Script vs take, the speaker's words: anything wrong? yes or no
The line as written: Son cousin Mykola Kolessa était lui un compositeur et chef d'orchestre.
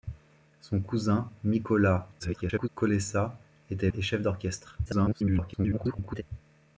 yes